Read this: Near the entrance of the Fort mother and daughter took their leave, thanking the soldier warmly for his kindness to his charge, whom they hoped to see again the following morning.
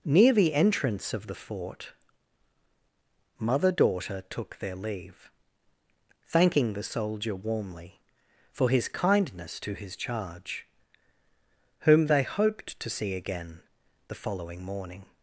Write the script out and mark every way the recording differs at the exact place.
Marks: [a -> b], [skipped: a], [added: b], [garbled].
Near the entrance of the Fort mother [skipped: and] daughter took their leave, thanking the soldier warmly for his kindness to his charge, whom they hoped to see again the following morning.